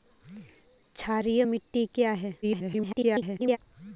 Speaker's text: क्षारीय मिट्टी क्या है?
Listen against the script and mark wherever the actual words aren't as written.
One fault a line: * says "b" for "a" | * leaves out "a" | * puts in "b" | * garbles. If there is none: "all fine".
* garbles